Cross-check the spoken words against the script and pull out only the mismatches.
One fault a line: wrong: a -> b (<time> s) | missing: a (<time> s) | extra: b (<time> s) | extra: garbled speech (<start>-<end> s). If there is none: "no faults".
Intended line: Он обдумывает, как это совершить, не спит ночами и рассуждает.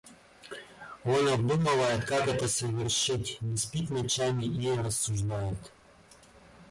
no faults